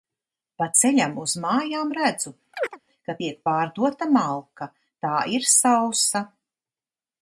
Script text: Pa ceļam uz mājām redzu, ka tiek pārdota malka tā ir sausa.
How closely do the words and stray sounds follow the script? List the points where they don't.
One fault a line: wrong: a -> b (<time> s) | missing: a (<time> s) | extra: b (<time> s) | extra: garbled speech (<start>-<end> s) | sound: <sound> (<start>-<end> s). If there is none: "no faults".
sound: chirp (2.5-2.8 s)